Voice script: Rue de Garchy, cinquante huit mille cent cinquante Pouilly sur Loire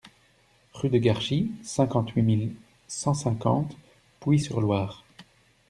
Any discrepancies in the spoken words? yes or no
no